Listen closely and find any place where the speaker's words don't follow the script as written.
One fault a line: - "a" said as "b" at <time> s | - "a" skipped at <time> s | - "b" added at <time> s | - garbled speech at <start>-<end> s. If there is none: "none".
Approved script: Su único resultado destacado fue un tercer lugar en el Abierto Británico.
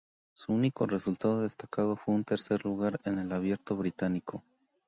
none